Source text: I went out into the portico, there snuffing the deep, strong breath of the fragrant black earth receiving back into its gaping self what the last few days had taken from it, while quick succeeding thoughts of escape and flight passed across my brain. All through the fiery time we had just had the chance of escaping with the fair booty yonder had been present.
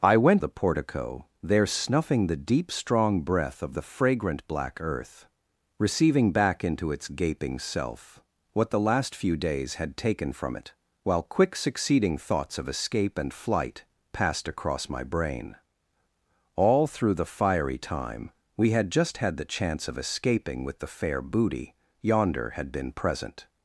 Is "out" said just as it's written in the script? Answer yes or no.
no